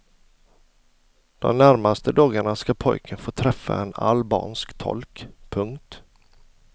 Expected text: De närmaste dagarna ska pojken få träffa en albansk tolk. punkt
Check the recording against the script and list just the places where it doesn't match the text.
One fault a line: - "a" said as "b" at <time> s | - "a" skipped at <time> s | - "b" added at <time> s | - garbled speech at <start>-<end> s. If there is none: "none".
none